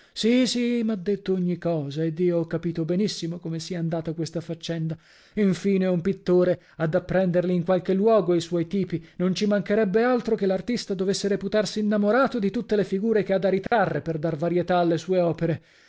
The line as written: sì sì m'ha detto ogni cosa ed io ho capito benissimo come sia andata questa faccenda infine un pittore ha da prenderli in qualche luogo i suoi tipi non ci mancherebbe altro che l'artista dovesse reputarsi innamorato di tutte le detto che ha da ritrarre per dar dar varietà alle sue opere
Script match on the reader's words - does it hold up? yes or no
no